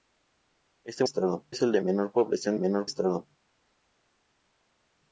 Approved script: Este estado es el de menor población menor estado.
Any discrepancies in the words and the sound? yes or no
no